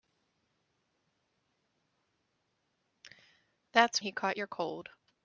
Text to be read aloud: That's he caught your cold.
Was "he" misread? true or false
false